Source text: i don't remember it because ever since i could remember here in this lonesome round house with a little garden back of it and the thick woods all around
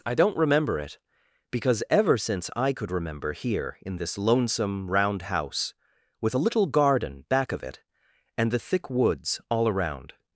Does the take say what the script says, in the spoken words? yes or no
yes